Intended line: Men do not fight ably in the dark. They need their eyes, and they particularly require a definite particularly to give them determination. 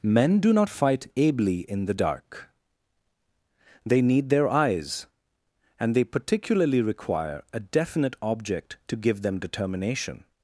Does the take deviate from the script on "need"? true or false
false